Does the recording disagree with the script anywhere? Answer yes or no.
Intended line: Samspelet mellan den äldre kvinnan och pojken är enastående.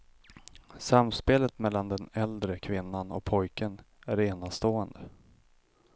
no